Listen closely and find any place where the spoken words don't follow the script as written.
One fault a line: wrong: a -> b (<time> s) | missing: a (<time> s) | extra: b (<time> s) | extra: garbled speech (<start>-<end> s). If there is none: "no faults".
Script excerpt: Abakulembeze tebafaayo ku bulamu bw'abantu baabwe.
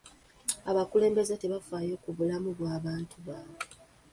no faults